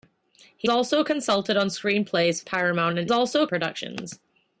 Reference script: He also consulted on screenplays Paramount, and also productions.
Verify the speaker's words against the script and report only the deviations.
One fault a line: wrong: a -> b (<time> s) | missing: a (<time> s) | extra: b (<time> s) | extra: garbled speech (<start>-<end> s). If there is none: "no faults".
no faults